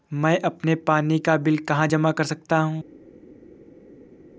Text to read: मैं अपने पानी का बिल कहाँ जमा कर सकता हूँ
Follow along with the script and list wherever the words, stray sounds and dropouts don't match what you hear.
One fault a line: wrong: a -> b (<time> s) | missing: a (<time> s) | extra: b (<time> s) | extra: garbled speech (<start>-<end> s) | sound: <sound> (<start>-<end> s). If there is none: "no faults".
no faults